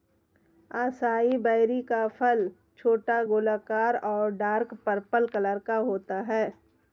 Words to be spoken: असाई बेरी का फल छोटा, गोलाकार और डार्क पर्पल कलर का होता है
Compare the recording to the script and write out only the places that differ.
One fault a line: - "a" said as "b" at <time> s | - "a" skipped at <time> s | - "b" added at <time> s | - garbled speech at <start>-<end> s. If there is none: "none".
none